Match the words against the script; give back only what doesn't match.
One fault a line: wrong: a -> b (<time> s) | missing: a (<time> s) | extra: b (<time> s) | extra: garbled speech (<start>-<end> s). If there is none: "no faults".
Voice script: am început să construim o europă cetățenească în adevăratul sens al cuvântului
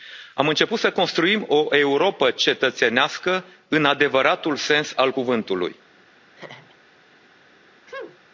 no faults